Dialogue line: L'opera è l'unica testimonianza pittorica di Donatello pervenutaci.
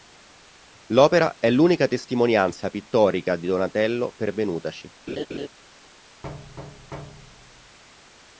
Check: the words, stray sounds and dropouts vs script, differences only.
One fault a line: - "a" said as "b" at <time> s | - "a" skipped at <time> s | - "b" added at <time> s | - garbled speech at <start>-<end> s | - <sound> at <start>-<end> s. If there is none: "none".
- laugh at 5.1-5.5 s
- thud at 6.2-7.8 s